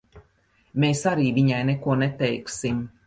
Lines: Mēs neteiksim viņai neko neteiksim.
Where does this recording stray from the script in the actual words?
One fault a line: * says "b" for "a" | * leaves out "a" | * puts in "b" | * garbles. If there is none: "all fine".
* says "arī" for "neteiksim"